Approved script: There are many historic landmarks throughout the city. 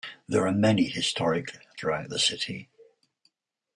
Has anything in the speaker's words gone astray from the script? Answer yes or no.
yes